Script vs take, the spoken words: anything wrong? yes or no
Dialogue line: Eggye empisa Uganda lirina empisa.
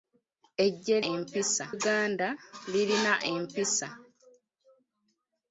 no